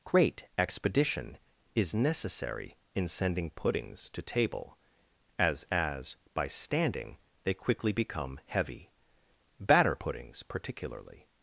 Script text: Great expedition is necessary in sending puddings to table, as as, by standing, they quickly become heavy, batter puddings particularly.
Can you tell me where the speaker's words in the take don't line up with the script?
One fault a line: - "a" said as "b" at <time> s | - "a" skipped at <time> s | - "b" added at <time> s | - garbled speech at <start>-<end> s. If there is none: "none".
none